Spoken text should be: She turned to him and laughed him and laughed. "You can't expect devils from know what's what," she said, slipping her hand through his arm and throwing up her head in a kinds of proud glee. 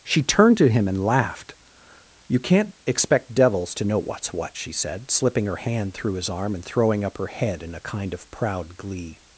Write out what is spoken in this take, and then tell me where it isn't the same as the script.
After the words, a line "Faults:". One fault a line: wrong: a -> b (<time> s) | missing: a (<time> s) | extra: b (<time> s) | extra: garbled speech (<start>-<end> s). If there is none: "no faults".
She turned to him and laughed. "You can't expect devils to know what's what," she said, slipping her hand through his arm and throwing up her head in a kind of proud glee.
Faults:
missing: him and laughed (1.5 s)
wrong: from -> to (3.8 s)
wrong: kinds -> kind (7.8 s)